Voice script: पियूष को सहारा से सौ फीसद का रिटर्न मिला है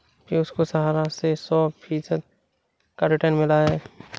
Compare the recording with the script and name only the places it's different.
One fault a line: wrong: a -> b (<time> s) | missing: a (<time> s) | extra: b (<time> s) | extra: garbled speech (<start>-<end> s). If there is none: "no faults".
no faults